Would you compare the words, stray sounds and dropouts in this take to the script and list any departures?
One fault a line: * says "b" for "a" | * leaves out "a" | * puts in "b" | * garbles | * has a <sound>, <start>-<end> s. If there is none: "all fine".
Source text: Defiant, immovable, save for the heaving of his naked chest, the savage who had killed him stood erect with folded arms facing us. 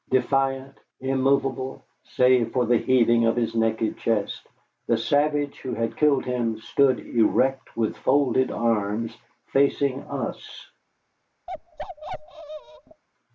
* has a bark, 11.5-13.0 s